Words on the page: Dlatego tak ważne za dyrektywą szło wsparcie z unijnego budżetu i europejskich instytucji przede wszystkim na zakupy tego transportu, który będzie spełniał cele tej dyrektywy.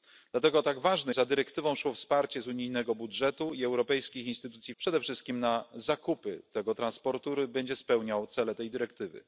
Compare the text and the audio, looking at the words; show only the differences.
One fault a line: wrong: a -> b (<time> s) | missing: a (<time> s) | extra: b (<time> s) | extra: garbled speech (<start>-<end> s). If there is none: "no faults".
no faults